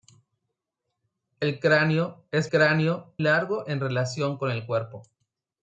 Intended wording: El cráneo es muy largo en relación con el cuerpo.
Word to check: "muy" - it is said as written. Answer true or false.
false